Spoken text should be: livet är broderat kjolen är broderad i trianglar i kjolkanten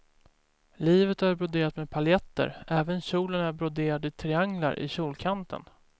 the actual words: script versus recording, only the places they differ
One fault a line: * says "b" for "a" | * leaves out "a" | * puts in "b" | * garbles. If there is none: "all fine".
* puts in "med paljetter även"